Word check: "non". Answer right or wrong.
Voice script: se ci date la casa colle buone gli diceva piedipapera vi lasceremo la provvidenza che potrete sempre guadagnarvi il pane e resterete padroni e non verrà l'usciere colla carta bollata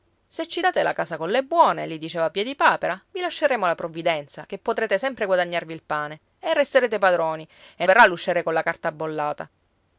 wrong